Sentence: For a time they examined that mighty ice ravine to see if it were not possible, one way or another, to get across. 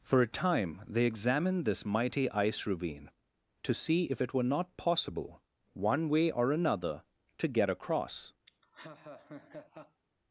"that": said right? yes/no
no